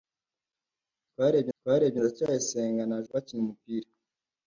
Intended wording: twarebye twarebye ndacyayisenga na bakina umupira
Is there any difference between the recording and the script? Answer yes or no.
no